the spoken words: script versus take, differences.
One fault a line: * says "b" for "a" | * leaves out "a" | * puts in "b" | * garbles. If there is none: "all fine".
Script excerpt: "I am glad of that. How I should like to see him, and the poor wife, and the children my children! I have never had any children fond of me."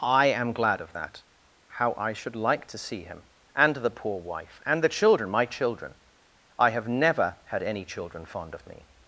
all fine